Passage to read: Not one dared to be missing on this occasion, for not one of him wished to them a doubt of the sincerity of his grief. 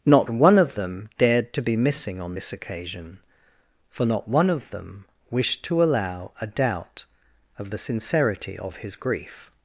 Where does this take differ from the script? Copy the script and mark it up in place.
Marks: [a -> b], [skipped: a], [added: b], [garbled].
Not one [added: of them] dared to be missing on this occasion, for not one of [him -> them] wished to [them -> allow] a doubt of the sincerity of his grief.